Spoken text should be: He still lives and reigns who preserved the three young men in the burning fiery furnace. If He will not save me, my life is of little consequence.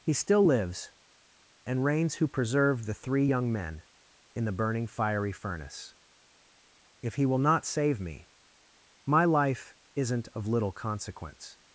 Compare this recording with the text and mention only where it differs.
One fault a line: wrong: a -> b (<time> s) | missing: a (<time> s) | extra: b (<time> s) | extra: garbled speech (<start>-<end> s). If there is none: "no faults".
wrong: is -> isn't (9.9 s)